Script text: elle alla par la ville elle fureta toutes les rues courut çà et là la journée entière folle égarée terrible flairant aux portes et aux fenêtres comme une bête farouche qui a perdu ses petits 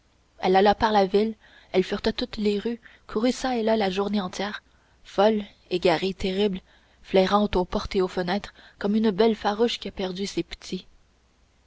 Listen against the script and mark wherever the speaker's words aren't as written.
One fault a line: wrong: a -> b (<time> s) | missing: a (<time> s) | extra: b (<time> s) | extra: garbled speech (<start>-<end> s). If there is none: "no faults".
no faults